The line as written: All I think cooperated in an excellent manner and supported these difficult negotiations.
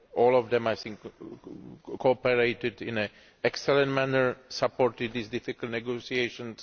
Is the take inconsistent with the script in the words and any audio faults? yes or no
yes